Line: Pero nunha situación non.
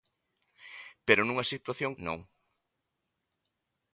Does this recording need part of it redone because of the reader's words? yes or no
no